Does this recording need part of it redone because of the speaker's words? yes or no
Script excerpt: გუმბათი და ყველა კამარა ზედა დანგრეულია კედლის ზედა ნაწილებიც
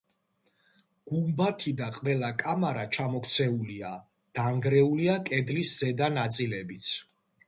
yes